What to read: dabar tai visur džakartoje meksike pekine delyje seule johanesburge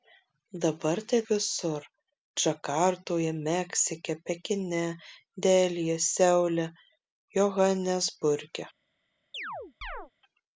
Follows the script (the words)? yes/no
yes